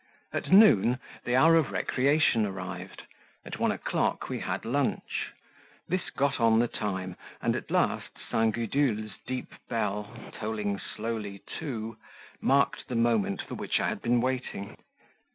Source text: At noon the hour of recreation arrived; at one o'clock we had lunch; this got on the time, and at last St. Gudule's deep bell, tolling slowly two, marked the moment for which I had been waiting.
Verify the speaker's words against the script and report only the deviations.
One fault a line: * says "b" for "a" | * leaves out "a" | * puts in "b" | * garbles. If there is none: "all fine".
all fine